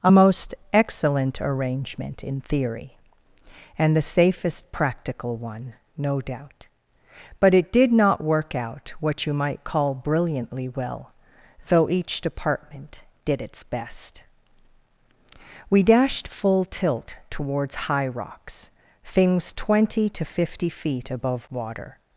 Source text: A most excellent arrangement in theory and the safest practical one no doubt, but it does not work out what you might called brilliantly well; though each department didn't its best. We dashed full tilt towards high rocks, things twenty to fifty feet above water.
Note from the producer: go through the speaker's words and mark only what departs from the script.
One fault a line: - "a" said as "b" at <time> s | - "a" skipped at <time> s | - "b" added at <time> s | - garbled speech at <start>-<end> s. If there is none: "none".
- "does" said as "did" at 7.7 s
- "called" said as "call" at 9.6 s
- "didn't" said as "did" at 13.2 s